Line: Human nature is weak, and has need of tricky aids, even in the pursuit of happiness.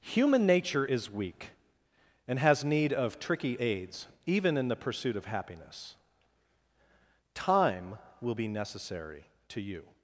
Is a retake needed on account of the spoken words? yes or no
yes